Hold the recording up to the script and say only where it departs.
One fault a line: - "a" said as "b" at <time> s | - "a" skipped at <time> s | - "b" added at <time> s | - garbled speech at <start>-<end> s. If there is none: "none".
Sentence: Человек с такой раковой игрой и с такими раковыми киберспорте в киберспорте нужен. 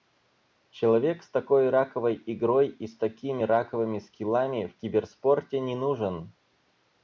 - "киберспорте" said as "скиллами" at 4.0 s
- "не" added at 5.6 s